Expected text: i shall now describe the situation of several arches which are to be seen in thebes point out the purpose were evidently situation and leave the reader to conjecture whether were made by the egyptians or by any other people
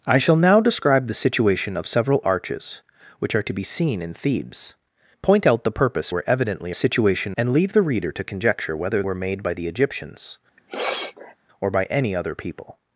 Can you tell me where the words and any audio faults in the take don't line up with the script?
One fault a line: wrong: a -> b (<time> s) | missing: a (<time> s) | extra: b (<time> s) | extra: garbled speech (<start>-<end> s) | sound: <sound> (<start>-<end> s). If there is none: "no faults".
sound: sniff (10.6-11.3 s)